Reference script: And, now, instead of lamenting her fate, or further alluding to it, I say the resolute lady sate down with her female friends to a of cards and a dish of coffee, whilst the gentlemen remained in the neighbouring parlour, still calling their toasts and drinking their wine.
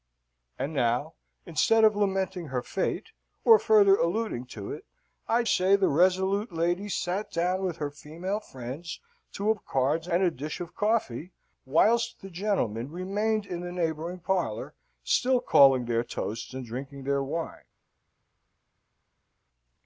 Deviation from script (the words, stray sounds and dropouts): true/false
false